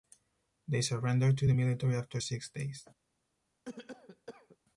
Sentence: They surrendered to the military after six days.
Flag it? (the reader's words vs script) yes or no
no